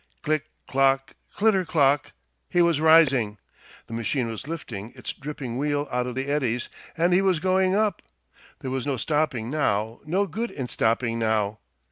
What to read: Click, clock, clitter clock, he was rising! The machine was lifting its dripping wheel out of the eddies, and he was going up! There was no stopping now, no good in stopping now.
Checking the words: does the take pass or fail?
pass